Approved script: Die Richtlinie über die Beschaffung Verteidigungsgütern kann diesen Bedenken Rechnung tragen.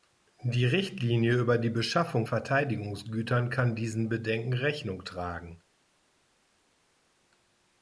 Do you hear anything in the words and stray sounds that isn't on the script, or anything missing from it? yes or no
no